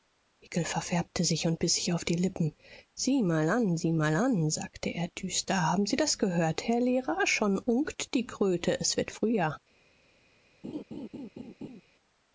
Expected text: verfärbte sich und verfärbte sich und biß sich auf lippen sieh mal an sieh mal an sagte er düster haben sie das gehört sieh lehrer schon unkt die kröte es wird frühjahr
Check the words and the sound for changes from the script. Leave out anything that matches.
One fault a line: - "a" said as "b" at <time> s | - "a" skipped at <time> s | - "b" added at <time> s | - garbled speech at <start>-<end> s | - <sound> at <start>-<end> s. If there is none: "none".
- "verfärbte sich und" skipped at 1.6 s
- "die" added at 2.0 s
- "sieh" said as "herr" at 6.7 s
- laugh at 10.6-11.8 s